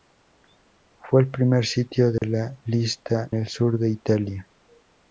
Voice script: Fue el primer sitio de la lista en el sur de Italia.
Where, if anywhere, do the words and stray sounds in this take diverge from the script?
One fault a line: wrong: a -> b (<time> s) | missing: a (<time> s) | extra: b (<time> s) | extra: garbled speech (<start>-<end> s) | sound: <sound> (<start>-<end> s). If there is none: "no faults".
sound: dropout (2.2-2.2 s)
missing: en (3.3 s)